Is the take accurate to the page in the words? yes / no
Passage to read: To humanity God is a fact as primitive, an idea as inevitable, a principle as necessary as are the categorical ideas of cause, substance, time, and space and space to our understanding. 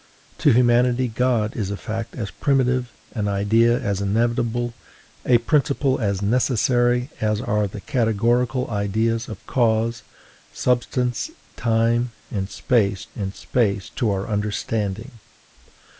yes